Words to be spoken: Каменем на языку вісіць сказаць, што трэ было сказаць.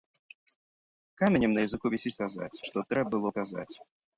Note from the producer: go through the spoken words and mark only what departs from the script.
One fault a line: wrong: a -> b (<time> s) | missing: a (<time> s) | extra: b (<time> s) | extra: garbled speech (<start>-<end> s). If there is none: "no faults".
no faults